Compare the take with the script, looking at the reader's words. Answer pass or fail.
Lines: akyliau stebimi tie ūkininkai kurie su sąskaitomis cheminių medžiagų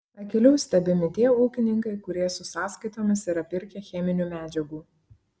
fail